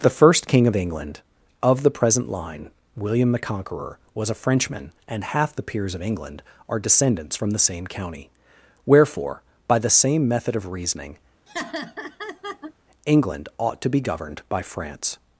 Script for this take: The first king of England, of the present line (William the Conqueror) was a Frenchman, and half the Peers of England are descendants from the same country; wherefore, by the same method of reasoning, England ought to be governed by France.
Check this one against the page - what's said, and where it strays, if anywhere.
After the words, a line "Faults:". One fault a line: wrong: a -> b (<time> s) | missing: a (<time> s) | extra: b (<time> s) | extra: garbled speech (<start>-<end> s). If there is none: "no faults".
The first king of England, of the present line (William the Conqueror) was a Frenchman, and half the Peers of England are descendants from the same county; wherefore, by the same method of reasoning, England ought to be governed by France.
Faults:
wrong: country -> county (7.8 s)